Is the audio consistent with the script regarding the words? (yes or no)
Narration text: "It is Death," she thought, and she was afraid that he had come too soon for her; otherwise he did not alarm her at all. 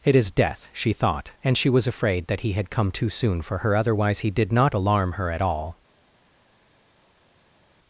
yes